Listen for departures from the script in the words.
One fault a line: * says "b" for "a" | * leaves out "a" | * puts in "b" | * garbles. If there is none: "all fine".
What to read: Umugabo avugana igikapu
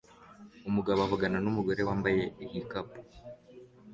* puts in "numugore wambaye"